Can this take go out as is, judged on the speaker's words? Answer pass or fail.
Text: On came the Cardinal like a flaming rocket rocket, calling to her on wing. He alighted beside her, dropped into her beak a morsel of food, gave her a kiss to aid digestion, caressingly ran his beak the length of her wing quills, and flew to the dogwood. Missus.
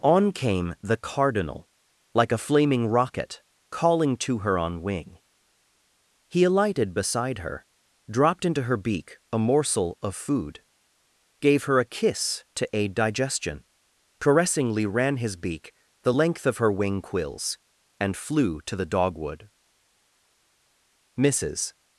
fail